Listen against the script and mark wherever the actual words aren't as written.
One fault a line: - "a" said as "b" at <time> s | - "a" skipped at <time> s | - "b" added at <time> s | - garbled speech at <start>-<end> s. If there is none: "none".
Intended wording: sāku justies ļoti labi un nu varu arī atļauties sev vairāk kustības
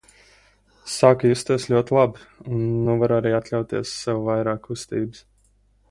none